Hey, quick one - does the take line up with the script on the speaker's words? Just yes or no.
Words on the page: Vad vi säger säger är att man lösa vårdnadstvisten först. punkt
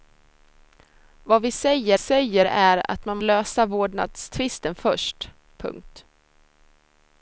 yes